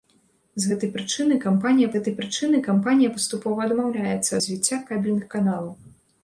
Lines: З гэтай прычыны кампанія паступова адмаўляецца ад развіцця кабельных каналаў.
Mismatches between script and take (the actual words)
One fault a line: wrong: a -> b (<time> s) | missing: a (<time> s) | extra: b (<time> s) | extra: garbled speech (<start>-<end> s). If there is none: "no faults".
extra: гэтай прычыны кампанія (1.9 s)
missing: ад (4.3 s)